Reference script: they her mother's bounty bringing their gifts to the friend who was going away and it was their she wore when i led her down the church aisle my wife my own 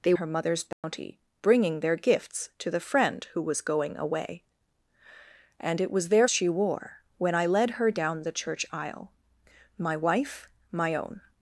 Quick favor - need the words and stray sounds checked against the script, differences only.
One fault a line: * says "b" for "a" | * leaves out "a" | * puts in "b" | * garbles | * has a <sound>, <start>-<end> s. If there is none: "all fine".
* has a dropout, 0.7-0.8 s